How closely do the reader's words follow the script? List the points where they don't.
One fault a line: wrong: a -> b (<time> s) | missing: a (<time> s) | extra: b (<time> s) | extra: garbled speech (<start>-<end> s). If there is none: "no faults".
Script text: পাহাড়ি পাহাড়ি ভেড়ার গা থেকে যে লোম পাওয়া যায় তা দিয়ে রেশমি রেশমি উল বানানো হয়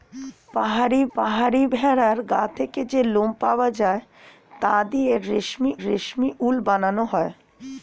no faults